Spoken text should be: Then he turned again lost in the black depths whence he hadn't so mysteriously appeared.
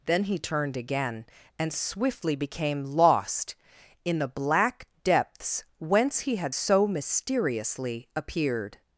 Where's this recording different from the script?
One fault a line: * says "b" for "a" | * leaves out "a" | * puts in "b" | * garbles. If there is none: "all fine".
* puts in "and swiftly became"
* says "had" for "hadn't"